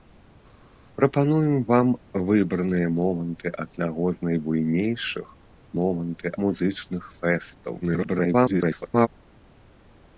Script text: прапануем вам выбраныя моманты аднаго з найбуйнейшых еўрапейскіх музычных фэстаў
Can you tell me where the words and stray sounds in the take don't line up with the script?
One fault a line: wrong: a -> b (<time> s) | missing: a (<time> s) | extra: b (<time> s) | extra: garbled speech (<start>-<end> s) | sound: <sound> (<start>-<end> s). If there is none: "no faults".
wrong: еўрапейскіх -> моманты (5.8 s)
extra: garbled speech (7.8-9.1 s)